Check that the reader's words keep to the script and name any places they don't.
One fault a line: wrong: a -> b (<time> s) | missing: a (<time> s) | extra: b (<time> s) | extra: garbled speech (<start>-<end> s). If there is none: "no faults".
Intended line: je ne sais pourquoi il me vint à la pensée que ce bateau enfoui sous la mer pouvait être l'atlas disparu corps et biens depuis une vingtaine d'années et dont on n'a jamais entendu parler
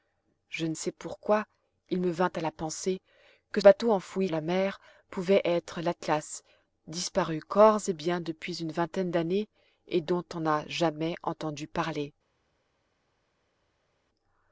missing: ce (3.6 s)
missing: sous (4.3 s)